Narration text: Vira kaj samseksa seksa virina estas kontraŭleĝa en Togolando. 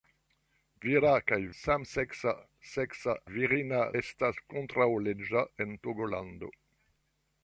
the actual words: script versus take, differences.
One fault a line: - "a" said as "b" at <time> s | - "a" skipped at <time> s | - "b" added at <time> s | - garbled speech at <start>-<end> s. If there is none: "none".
none